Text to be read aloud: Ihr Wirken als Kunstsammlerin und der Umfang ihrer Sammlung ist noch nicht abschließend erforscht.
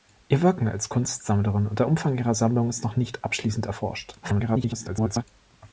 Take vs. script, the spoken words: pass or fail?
fail